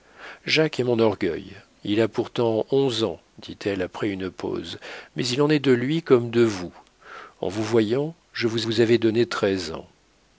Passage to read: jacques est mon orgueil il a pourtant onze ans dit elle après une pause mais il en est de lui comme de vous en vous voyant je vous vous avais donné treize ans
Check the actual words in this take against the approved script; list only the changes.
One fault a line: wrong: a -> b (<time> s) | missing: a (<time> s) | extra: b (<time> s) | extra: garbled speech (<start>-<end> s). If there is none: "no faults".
no faults